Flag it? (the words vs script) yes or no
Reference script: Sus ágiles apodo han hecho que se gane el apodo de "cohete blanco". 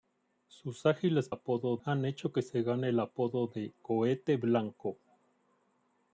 no